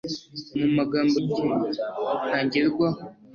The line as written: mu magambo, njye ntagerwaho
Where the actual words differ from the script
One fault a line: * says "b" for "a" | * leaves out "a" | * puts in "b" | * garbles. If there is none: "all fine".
all fine